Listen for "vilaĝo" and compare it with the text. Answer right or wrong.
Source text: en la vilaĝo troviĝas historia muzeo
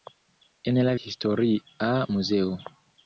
wrong